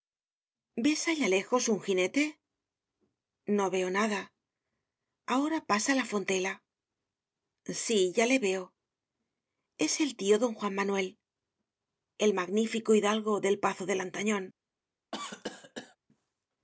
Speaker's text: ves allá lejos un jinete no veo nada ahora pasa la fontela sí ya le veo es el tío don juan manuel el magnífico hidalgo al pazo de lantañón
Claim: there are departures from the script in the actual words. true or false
true